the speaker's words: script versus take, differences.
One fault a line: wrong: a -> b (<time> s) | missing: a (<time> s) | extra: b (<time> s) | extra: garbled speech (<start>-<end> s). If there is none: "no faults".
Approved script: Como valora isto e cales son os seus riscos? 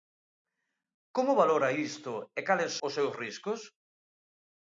missing: son (2.7 s)